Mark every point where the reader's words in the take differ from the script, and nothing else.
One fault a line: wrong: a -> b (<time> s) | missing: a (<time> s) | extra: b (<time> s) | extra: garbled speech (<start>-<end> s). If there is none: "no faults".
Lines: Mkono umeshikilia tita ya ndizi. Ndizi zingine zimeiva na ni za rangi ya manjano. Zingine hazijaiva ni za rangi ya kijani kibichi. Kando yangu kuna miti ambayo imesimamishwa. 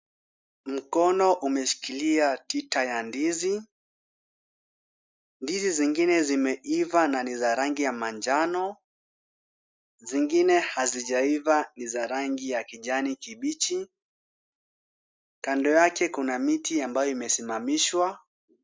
wrong: yangu -> yake (15.7 s)